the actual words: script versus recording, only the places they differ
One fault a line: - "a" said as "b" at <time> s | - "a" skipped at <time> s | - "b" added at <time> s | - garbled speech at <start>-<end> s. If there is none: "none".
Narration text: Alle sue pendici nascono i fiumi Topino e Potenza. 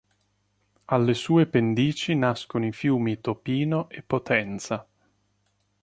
none